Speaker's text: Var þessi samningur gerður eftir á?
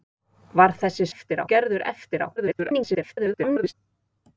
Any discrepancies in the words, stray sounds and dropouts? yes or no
yes